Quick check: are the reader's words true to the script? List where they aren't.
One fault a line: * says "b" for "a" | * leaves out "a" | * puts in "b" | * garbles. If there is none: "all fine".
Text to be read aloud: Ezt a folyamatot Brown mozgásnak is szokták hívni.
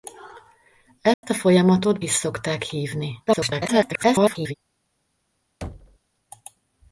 * leaves out "Brown mozgásnak"
* garbles